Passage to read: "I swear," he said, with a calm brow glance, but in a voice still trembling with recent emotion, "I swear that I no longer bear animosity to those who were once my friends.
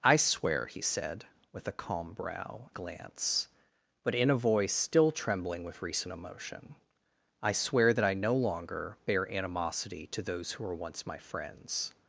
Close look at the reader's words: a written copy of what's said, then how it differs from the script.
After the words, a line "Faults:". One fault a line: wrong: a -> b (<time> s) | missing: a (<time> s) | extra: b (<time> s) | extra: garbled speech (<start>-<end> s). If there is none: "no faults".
"I swear," he said, with a calm brow glance, but in a voice still trembling with recent emotion, "I swear that I no longer bear animosity to those who were once my friends.
Faults:
no faults